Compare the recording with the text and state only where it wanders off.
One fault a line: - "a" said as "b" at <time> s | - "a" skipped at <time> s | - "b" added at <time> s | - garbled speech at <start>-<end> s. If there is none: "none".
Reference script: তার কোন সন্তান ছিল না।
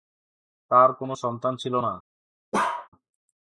none